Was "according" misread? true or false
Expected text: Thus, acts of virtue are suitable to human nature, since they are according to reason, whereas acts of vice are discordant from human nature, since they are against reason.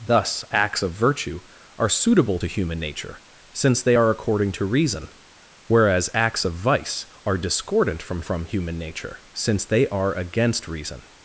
false